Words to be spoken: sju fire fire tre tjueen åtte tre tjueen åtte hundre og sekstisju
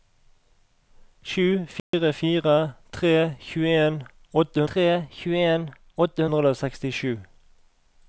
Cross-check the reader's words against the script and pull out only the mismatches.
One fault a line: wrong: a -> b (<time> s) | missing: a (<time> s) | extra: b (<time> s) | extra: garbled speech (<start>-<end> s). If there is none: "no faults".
no faults